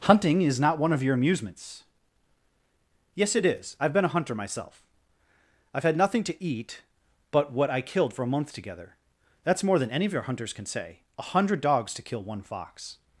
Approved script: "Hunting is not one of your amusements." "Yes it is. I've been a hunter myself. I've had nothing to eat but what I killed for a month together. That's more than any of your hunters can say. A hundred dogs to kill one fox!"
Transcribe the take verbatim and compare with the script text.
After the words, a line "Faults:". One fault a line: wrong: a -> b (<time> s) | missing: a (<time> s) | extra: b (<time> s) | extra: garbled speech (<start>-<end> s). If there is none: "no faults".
"Hunting is not one of your amusements." "Yes it is. I've been a hunter myself. I've had nothing to eat but what I killed for a month together. That's more than any of your hunters can say. A hundred dogs to kill one fox!"
Faults:
no faults